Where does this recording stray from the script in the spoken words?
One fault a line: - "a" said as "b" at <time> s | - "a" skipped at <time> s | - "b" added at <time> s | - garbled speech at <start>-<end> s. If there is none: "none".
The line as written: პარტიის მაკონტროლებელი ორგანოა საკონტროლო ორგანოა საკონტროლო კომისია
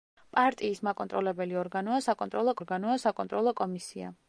none